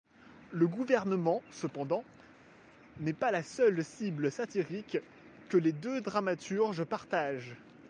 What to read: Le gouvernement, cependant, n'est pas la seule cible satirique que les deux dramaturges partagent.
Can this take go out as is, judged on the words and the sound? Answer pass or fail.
pass